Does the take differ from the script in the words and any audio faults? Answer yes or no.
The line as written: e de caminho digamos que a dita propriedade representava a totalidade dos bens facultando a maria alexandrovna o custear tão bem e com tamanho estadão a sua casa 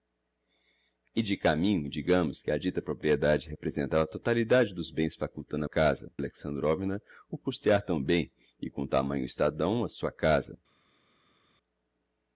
yes